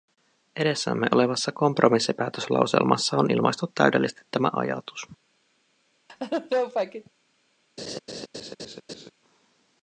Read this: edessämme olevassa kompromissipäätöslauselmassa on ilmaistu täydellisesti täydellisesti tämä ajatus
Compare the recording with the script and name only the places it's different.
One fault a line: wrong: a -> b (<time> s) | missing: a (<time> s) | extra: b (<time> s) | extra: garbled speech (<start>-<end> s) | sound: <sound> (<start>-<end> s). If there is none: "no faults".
missing: täydellisesti (4.2 s)
sound: laugh (6.1-7.1 s)
sound: laugh (7.8-9.1 s)